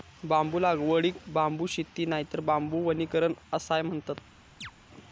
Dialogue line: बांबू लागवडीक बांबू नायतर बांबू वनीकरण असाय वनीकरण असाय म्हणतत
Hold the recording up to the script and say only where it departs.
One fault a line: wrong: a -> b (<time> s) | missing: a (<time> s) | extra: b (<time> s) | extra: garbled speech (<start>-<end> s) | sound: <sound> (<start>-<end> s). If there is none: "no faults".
extra: शेती (1.7 s)
missing: वनीकरण असाय (3.8 s)
sound: chirp (4.6-4.7 s)